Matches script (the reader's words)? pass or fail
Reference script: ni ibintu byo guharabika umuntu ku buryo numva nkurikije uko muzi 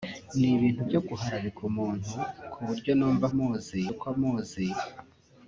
fail